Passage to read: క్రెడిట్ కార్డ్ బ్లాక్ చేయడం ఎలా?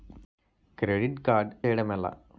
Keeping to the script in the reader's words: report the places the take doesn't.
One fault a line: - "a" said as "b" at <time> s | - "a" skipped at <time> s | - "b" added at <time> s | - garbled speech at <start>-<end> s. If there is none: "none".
- "బ్లాక్" skipped at 1.5 s